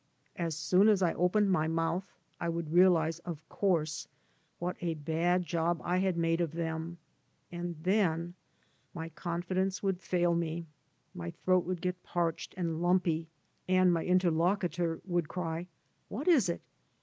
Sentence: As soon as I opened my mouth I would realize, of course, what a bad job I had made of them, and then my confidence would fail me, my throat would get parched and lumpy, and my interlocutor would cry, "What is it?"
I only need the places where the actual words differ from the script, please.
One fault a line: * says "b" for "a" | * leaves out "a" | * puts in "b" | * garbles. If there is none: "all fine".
all fine